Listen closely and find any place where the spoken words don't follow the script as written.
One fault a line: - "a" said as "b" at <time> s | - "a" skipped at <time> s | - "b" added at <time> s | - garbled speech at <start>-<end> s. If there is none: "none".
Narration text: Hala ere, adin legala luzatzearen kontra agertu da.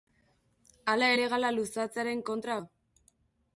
- "ere adin" skipped at 1.1 s
- "agertu" skipped at 2.6 s